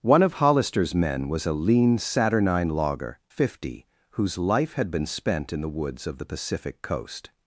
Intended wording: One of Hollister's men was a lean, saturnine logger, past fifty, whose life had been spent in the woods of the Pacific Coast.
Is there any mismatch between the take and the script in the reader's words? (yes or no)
yes